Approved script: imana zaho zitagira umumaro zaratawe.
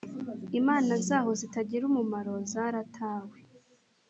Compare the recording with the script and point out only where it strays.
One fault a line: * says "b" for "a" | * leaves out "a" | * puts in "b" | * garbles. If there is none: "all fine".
all fine